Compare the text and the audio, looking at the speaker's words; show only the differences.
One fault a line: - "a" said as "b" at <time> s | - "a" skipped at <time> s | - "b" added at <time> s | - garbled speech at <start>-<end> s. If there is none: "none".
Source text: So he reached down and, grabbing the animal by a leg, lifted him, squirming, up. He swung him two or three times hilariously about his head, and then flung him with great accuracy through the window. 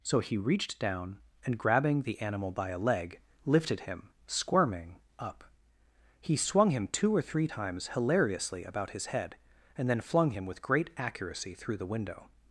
none